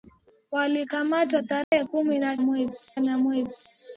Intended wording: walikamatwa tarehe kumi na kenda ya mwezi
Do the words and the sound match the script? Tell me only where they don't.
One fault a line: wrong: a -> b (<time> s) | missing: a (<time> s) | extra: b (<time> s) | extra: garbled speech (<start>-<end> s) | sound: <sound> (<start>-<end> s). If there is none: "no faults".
sound: dropout (1.6-1.7 s)
wrong: kenda -> mwezi (2.4 s)